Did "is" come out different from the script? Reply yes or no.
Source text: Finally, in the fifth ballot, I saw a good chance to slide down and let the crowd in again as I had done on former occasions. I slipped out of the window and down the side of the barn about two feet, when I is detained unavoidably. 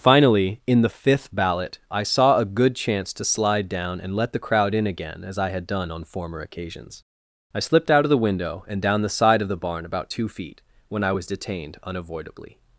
yes